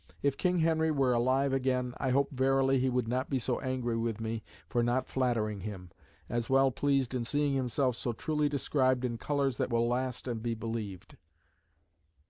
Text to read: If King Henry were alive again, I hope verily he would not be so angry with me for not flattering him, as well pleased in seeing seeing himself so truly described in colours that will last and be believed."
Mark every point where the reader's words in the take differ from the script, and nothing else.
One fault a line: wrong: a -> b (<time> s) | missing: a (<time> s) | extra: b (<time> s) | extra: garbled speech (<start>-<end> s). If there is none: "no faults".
missing: seeing (7.5 s)